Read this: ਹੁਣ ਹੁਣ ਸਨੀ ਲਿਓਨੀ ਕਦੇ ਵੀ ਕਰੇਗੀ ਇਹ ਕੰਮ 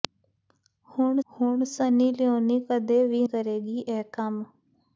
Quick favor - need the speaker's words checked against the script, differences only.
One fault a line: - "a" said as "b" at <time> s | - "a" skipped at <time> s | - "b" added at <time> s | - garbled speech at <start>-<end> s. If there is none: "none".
none